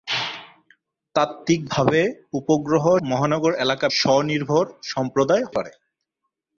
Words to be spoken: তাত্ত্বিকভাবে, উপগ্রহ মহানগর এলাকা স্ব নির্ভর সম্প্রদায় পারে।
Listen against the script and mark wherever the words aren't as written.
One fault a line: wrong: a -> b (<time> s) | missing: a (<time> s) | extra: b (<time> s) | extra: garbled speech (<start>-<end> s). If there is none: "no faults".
no faults